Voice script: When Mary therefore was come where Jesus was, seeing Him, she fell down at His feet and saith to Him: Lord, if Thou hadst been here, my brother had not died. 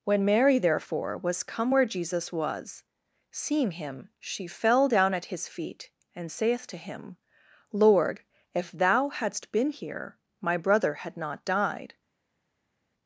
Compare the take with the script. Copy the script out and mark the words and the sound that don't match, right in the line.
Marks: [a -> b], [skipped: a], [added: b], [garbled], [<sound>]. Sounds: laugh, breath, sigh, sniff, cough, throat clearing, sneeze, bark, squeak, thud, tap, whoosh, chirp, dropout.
When Mary therefore was come where Jesus was, seeing Him, she fell down at His feet and saith to Him: Lord, if Thou hadst been here, my brother had not died.